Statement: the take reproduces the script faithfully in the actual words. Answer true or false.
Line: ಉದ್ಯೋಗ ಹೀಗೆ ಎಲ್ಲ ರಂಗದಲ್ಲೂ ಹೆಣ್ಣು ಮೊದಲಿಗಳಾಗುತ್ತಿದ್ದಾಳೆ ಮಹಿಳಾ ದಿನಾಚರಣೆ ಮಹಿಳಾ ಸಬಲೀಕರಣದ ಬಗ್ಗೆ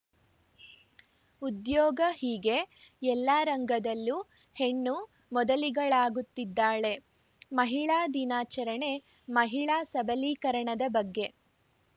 true